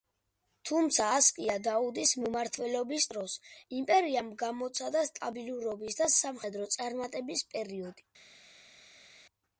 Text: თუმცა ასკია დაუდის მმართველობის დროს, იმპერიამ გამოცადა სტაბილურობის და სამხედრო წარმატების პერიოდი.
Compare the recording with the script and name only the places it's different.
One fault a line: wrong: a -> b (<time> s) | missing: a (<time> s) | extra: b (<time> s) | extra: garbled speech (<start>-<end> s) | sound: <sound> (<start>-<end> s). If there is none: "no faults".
no faults